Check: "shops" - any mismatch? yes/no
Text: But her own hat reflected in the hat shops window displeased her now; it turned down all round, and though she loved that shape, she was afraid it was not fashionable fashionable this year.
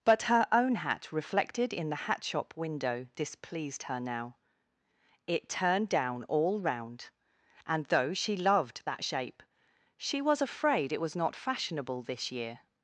yes